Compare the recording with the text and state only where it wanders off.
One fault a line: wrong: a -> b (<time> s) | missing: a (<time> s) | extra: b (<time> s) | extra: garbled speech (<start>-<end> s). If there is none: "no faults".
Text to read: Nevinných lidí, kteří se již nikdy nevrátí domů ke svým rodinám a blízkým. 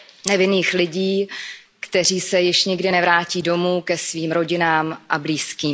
no faults